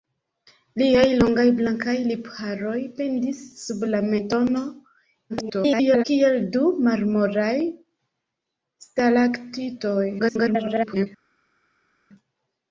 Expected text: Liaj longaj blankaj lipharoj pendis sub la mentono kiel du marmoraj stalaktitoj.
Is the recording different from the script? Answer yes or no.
yes